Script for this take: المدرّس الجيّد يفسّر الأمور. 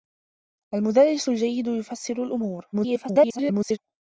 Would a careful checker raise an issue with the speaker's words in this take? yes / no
yes